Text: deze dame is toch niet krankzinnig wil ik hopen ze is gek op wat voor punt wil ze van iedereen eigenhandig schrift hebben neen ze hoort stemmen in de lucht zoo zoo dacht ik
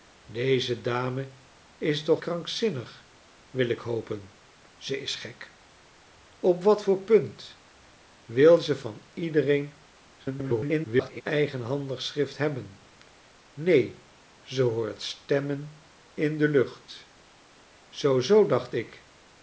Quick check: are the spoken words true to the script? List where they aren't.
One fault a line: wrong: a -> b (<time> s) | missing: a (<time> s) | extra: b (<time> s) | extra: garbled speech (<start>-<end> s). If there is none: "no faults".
missing: niet (2.2 s)
extra: garbled speech (10.2-11.2 s)